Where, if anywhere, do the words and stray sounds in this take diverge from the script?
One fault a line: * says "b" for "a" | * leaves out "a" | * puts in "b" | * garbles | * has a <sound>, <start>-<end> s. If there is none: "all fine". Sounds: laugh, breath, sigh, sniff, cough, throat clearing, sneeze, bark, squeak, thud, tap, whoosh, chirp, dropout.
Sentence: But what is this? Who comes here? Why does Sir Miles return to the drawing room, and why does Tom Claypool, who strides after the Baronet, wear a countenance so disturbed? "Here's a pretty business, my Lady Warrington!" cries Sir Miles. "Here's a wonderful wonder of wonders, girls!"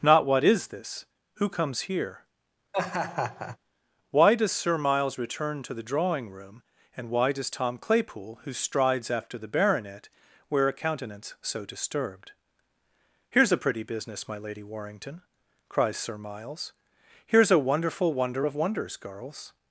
* says "Not" for "But"
* has a laugh, 2.7-3.6 s